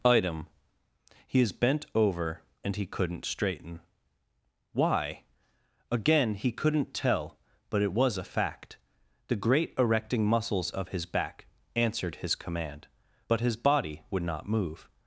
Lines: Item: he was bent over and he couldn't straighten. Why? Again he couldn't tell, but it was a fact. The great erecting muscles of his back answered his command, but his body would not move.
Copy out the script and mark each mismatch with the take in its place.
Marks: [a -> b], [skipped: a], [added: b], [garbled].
Item: he [was -> is] bent over and he couldn't straighten. Why? Again he couldn't tell, but it was a fact. The great erecting muscles of his back answered his command, but his body would not move.